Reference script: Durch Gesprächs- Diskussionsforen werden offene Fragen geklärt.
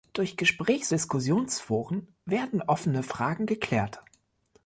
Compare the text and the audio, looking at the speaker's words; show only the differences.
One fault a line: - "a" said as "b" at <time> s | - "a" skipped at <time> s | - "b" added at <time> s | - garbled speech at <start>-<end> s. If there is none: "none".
none